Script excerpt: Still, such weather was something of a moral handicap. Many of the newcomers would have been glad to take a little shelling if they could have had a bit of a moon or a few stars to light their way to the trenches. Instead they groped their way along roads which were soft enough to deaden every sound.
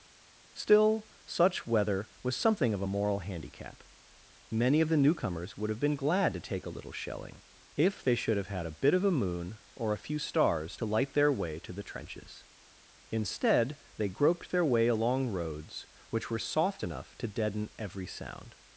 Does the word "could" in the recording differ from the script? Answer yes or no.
yes